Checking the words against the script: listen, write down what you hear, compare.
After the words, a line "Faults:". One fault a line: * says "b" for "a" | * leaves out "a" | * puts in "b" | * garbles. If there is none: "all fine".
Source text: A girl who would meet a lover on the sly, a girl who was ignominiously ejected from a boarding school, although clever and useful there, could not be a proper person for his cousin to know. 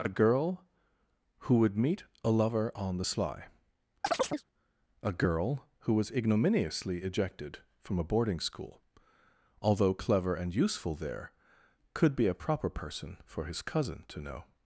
A girl who would meet a lover on the sly, a girl who was ignominiously ejected from a boarding school, although clever and useful there, could be a proper person for his cousin to know.
Faults:
* leaves out "not"